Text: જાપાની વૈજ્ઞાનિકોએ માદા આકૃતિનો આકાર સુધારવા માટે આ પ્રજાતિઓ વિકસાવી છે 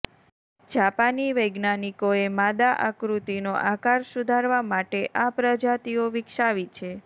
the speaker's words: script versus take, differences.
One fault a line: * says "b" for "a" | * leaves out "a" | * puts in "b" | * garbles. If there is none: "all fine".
all fine